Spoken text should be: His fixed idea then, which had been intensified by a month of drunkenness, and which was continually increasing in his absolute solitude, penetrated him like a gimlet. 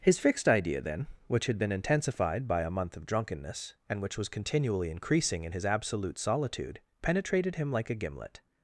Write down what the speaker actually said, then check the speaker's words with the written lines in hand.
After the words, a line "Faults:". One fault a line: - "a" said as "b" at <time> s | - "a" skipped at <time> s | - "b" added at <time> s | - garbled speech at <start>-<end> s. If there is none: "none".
His fixed idea then, which had been intensified by a month of drunkenness, and which was continually increasing in his absolute solitude, penetrated him like a gimlet.
Faults:
none